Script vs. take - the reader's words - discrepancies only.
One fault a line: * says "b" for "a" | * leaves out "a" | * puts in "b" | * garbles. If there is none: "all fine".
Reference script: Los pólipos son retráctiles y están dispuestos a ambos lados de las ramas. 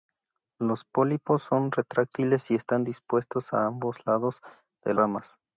* leaves out "las"